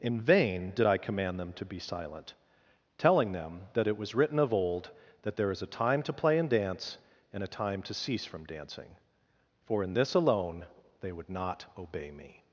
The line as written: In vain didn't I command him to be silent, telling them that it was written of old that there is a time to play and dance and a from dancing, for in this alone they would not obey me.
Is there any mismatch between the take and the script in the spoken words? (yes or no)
yes